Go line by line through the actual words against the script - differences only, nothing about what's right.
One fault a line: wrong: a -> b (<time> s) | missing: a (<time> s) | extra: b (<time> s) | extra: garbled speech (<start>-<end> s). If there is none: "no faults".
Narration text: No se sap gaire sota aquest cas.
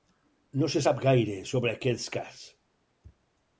wrong: sota -> sobre (1.5 s)